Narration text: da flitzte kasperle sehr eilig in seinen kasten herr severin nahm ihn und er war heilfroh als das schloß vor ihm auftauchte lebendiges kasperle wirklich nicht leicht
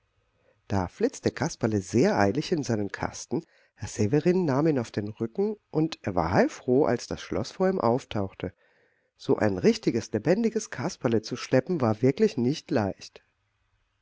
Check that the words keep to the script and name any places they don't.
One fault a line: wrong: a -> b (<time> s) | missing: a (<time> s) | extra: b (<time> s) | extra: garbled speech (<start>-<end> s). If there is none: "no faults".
extra: auf den rücken (4.8 s)
extra: so ein richtiges (9.2 s)
extra: zu schleppen war (11.2 s)